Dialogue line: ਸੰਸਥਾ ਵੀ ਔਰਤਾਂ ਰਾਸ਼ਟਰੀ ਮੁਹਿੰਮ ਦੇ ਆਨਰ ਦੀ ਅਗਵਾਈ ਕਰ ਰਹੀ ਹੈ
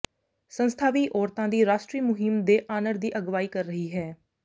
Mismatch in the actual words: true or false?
true